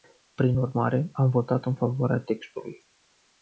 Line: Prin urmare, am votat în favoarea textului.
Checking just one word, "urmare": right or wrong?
right